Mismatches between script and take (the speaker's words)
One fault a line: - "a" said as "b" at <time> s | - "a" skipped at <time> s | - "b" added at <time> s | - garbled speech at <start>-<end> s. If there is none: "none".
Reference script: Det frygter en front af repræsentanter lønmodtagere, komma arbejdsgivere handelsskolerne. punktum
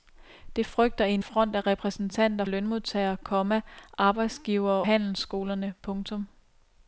none